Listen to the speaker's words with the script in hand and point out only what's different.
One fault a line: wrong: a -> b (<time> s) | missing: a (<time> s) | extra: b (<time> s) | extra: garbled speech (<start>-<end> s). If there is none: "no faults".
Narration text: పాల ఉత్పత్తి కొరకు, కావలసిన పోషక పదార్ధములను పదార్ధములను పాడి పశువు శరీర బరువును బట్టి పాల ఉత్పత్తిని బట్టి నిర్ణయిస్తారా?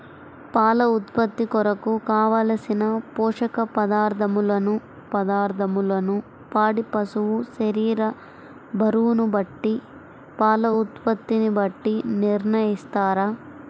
no faults